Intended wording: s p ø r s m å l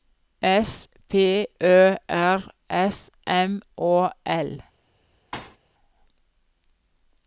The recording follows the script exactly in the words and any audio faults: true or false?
false